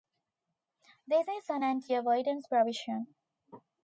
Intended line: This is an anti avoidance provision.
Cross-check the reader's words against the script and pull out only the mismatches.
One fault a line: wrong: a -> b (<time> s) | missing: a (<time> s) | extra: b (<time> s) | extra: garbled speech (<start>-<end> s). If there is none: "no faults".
no faults